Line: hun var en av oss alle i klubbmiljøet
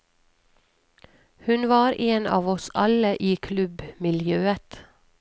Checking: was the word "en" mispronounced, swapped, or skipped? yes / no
no